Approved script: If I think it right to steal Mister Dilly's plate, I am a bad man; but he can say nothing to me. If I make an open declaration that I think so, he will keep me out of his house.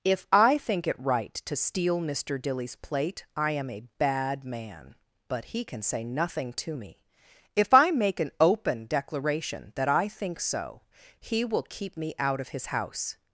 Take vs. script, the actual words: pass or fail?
pass